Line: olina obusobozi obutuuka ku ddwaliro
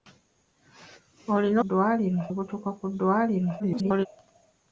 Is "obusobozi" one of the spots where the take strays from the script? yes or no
yes